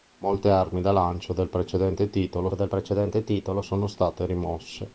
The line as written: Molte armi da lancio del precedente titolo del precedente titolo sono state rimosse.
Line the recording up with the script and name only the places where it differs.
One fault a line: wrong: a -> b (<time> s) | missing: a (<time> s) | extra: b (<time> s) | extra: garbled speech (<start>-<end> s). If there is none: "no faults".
no faults